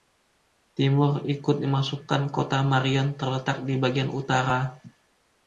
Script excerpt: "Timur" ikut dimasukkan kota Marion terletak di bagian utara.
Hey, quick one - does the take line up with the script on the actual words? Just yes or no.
yes